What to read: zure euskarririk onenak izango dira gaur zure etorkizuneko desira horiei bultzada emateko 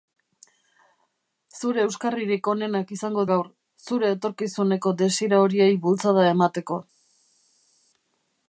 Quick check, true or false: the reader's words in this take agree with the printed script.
false